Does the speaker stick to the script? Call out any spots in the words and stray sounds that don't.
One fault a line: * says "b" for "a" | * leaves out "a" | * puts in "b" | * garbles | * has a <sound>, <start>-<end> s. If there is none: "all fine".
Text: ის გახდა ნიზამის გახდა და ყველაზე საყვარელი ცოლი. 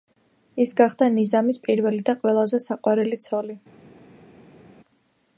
* says "პირველი" for "გახდა"